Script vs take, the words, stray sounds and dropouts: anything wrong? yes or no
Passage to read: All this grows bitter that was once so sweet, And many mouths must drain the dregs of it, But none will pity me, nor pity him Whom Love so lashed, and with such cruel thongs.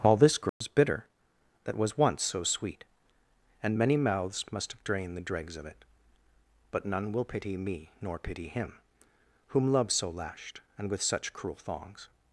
yes